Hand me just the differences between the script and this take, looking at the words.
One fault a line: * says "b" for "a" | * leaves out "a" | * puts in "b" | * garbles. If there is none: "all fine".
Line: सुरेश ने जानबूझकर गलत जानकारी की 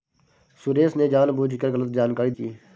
all fine